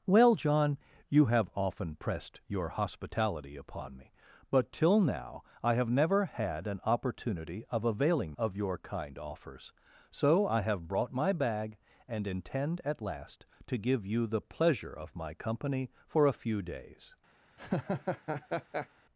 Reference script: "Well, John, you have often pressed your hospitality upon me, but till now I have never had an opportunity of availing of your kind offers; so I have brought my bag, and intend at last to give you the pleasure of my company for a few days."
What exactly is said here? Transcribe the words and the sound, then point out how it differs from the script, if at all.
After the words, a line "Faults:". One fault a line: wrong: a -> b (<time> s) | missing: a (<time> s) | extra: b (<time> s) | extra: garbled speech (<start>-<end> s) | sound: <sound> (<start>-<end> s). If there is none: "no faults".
"Well, John, you have often pressed your hospitality upon me, but till now I have never had an opportunity of availing of your kind offers; so I have brought my bag, and intend at last to give you the pleasure of my company for a few days."
Faults:
sound: laugh (17.6-18.9 s)